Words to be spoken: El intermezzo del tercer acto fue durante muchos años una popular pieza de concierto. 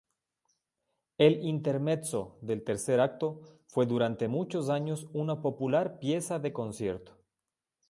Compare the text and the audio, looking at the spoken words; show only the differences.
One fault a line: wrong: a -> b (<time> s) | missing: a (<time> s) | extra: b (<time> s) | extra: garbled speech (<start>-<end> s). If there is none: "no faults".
no faults